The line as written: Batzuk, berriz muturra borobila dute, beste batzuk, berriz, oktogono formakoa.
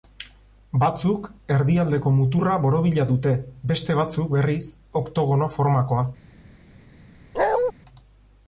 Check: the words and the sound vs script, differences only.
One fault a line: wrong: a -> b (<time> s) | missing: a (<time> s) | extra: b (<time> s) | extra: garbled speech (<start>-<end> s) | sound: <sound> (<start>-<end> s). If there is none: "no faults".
wrong: berriz -> erdialdeko (1.6 s)
sound: bark (7.3-7.7 s)